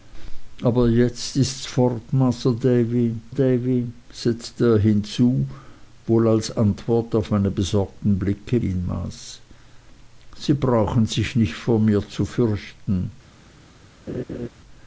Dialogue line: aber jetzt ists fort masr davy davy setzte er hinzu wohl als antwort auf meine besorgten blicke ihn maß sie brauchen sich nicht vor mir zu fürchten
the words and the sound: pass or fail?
fail